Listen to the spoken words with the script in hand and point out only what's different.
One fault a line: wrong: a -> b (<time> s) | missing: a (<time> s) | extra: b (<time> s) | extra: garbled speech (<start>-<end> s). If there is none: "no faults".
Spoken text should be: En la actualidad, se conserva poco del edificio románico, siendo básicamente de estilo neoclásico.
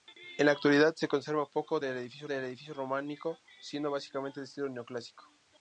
extra: del edificio (2.2 s)